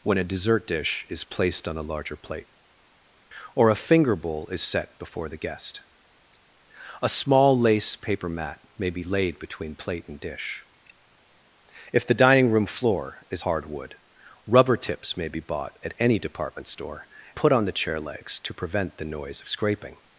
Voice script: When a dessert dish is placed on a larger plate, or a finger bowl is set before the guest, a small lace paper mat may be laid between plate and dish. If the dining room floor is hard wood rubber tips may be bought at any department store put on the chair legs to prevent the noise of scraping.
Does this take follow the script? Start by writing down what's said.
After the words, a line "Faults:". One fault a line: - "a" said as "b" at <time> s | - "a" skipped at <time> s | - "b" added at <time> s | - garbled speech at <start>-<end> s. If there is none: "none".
When a dessert dish is placed on a larger plate, or a finger bowl is set before the guest, a small lace paper mat may be laid between plate and dish. If the dining room floor is hard wood rubber tips may be bought at any department store put on the chair legs to prevent the noise of scraping.
Faults:
none